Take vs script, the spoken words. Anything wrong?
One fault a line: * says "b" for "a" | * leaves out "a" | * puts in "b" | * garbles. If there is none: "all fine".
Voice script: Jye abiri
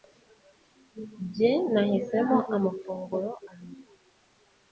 * puts in "nahisemo amafunguro"